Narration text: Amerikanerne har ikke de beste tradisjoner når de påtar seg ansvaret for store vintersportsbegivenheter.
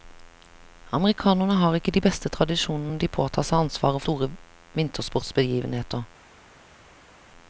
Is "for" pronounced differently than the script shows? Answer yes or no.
yes